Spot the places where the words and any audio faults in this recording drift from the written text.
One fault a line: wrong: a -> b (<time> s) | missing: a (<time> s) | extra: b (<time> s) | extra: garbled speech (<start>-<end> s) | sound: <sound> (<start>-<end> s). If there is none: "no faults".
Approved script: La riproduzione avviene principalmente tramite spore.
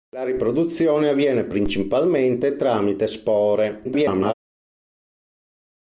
extra: garbled speech (3.8-4.3 s)